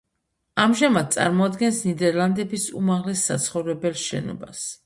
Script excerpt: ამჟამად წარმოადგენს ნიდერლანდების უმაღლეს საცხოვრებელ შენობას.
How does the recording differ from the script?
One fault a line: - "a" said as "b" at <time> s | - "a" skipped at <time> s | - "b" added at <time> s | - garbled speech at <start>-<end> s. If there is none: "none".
none